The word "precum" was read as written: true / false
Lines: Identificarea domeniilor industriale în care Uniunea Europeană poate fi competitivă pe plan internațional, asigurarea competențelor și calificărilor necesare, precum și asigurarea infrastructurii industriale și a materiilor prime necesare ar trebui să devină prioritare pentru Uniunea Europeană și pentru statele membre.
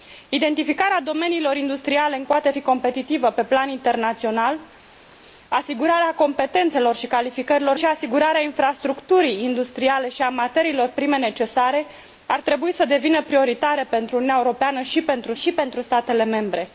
false